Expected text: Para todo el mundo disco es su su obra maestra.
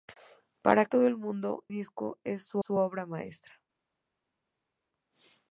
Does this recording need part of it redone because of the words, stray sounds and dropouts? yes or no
no